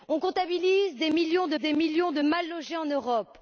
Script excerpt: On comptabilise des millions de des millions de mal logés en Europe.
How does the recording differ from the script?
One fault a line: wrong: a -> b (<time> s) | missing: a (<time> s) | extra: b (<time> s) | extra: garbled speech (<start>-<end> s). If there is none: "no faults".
no faults